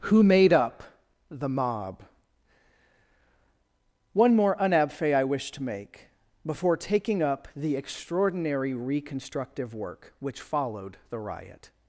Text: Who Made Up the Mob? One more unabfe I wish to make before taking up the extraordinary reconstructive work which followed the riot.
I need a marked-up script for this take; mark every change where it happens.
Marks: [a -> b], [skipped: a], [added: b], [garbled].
Who Made Up the Mob? One more unabfe I wish to make before taking up the extraordinary reconstructive work which followed the riot.